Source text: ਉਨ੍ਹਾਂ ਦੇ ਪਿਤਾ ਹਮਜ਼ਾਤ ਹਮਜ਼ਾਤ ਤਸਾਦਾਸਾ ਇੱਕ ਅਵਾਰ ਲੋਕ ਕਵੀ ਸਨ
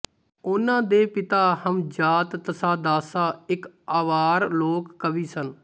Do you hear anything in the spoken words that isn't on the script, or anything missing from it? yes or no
yes